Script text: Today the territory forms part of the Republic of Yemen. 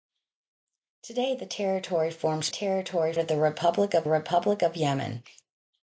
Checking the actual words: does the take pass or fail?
fail